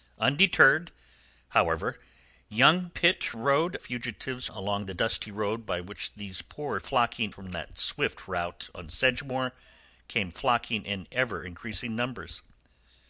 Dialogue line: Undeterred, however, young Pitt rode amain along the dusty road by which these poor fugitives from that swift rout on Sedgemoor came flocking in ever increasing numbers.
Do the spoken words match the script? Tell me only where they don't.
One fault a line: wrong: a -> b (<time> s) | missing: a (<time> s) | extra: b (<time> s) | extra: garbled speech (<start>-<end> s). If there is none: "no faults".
wrong: amain -> fugitives (3.8 s)
wrong: fugitives -> flocking (6.8 s)